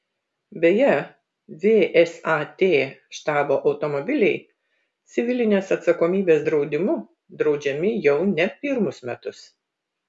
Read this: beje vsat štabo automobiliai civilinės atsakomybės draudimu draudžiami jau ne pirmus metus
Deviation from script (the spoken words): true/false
false